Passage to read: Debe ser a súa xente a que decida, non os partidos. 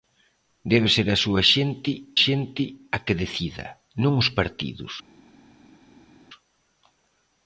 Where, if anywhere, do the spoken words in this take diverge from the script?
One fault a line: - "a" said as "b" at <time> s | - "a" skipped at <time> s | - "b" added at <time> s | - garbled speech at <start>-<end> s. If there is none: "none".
- "xente" added at 2.2 s